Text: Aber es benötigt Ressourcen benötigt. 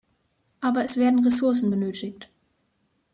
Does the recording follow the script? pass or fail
fail